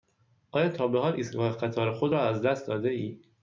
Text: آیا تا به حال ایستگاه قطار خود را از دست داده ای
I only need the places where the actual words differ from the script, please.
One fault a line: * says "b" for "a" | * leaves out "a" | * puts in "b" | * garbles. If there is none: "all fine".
all fine